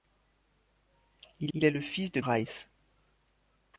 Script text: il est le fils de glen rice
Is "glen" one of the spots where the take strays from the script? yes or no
yes